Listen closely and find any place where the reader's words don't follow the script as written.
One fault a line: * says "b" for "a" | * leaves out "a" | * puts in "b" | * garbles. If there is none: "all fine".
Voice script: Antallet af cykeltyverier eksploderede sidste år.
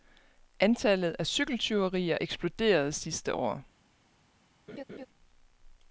all fine